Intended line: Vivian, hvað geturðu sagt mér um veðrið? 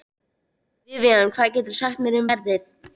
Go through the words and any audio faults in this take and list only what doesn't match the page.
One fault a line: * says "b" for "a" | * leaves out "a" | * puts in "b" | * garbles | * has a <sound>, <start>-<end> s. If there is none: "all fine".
all fine